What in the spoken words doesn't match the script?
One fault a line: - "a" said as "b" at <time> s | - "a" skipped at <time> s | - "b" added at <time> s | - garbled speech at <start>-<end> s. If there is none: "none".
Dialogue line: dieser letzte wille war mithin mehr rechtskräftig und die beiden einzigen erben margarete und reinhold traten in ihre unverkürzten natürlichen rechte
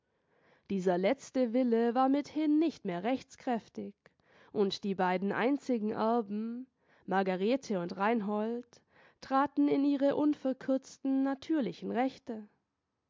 - "nicht" added at 2.6 s